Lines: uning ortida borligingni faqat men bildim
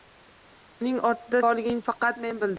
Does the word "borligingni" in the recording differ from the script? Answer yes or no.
no